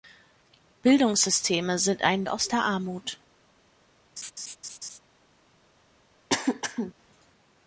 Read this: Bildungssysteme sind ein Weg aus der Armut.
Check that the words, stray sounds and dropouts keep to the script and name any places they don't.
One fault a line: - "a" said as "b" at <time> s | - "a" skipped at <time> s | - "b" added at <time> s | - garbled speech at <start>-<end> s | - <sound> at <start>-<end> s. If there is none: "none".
- "Weg" skipped at 2.3 s
- laugh at 4.2-5.0 s
- throat clearing at 6.3-6.9 s